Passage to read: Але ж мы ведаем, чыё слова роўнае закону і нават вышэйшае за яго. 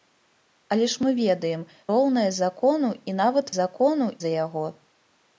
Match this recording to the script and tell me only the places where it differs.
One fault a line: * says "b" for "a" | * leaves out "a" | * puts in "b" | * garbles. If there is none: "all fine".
* leaves out "чыё слова"
* says "закону" for "вышэйшае"